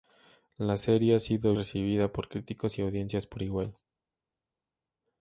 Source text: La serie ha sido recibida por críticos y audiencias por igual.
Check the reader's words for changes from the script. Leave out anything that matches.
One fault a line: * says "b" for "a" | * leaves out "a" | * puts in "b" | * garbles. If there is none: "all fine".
all fine